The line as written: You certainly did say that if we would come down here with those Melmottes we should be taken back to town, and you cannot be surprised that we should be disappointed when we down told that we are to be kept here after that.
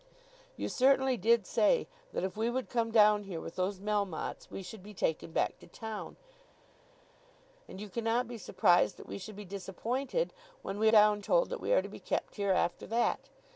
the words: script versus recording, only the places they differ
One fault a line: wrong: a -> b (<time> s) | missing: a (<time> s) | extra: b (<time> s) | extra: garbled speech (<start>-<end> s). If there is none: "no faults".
no faults